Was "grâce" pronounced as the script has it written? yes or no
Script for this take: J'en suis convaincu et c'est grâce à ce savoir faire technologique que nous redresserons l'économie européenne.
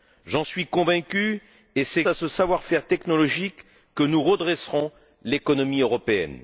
no